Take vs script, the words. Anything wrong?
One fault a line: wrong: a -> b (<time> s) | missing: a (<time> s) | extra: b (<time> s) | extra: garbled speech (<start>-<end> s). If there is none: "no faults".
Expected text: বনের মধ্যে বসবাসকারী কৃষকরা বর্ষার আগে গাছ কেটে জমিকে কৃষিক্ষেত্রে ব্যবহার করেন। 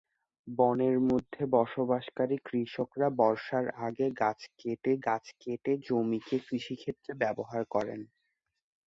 extra: গাছ কেটে (5.1 s)